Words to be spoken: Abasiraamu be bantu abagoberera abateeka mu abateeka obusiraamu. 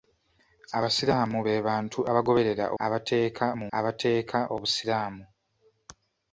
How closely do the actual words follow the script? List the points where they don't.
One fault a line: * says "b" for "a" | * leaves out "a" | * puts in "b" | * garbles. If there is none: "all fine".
all fine